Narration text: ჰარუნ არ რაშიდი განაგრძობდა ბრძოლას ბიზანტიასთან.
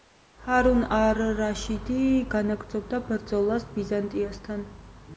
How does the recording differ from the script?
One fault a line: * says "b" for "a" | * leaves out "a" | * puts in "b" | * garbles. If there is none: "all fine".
all fine